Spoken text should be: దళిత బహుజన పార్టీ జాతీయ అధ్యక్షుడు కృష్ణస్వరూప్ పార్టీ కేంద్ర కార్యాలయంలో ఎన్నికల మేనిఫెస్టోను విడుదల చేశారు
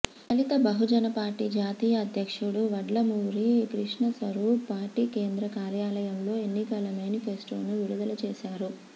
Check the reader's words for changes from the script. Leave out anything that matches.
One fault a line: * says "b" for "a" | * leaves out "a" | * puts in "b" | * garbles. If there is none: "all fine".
* puts in "వడ్లమూరి"